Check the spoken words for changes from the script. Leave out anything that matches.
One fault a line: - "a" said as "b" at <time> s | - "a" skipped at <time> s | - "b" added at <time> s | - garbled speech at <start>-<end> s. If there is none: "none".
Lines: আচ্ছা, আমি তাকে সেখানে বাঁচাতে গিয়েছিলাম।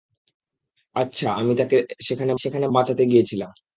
- "সেখানে" added at 2.4 s